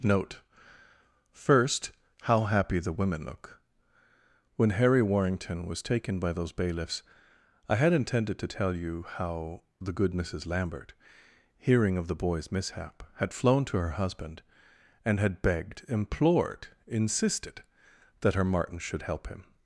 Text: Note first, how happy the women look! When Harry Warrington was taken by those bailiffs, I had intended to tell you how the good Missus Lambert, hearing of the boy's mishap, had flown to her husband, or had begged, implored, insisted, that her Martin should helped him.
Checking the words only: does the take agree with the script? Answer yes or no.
no